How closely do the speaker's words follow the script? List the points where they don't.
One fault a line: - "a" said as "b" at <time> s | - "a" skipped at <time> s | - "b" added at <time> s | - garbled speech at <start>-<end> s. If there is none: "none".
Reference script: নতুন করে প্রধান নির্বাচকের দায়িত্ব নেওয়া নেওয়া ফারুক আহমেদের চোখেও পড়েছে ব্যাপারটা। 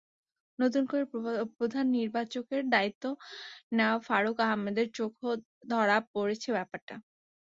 - "নেওয়া" skipped at 4.0 s
- "ধরা" added at 5.7 s